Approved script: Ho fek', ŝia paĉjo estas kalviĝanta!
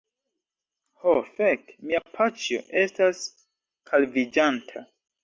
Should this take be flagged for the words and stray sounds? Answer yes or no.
yes